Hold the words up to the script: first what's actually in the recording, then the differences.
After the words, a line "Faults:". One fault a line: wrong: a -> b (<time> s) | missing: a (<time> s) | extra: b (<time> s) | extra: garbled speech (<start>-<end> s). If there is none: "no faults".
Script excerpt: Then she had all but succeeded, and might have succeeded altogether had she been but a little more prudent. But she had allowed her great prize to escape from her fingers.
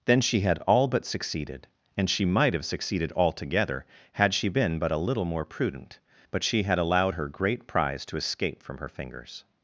Then she had all but succeeded, and she might have succeeded altogether had she been but a little more prudent. But she had allowed her great prize to escape from her fingers.
Faults:
extra: she (2.1 s)